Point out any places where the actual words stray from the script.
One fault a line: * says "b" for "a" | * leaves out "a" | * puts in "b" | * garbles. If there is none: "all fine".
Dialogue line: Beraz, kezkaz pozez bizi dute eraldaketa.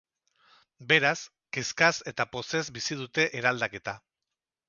* puts in "eta"